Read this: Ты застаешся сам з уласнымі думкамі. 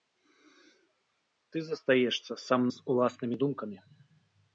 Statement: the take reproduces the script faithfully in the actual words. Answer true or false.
true